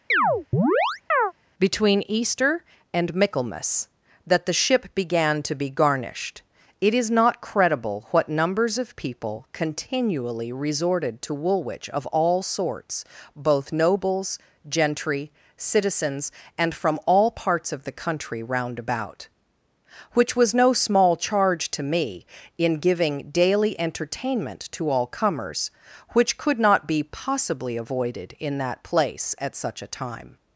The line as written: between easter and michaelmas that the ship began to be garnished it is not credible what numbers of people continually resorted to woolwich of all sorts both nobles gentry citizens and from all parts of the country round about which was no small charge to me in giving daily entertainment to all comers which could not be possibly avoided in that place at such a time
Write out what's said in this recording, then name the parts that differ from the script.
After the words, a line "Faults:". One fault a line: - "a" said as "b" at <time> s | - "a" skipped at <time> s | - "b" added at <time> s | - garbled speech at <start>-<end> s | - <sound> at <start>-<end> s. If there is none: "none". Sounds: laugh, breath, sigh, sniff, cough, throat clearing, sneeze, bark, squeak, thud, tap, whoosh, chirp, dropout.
between easter and michaelmas that the ship began to be garnished it is not credible what numbers of people continually resorted to woolwich of all sorts both nobles gentry citizens and from all parts of the country round about which was no small charge to me in giving daily entertainment to all comers which could not be possibly avoided in that place at such a time
Faults:
- chirp at 0.1-1.3 s